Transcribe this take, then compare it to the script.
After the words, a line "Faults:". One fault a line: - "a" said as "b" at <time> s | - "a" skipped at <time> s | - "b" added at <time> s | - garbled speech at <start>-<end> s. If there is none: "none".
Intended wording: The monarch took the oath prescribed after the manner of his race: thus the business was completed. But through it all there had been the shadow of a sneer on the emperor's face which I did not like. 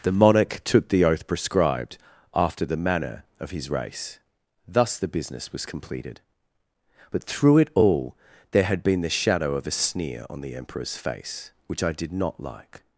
The monarch took the oath prescribed after the manner of his race: thus the business was completed. But through it all there had been the shadow of a sneer on the emperor's face which I did not like.
Faults:
none